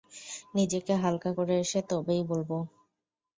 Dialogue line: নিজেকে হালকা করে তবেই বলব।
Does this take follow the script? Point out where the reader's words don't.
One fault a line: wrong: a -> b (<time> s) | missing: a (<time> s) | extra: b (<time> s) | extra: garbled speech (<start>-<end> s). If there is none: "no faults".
extra: এসে (1.6 s)